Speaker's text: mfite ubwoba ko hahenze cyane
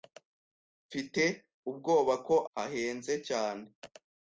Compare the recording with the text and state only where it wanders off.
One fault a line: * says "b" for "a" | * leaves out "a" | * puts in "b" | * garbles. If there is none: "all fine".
all fine